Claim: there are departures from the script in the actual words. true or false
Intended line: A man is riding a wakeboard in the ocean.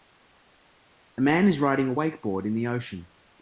false